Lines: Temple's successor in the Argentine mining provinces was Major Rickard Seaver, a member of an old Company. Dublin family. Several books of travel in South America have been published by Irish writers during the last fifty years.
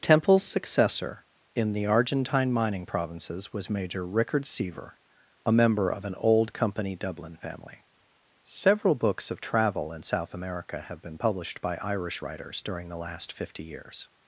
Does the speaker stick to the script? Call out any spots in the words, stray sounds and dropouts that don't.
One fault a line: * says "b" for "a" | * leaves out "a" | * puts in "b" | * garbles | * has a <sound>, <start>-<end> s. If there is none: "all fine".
all fine